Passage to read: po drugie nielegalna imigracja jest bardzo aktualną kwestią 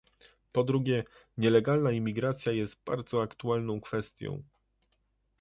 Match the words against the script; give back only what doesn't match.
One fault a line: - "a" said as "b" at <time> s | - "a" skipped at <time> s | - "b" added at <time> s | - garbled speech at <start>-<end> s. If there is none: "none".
none